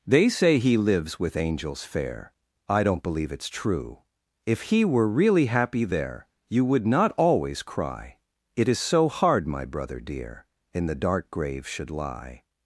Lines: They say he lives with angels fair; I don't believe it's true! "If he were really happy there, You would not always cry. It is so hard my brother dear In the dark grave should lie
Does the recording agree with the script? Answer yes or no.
yes